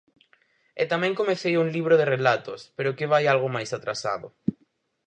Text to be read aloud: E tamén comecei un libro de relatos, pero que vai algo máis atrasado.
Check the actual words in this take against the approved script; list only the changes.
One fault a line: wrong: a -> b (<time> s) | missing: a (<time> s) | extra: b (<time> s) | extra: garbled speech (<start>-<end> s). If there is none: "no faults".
no faults